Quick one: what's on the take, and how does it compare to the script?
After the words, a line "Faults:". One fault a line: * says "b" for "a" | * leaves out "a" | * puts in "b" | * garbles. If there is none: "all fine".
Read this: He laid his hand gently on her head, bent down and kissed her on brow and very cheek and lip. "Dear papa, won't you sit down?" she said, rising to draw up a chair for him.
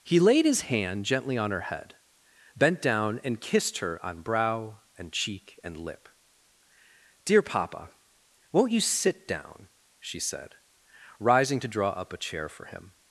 He laid his hand gently on her head, bent down and kissed her on brow and cheek and lip. "Dear papa, won't you sit down?" she said, rising to draw up a chair for him.
Faults:
* leaves out "very"